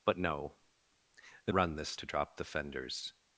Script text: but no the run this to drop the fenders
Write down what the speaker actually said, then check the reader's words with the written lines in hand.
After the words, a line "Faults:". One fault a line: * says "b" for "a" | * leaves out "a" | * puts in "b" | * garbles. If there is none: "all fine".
but no the run this to drop the fenders
Faults:
all fine